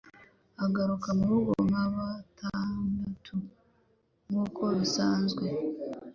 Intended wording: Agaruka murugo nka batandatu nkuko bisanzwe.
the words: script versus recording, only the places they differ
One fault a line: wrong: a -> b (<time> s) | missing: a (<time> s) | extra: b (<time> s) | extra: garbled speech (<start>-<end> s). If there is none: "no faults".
no faults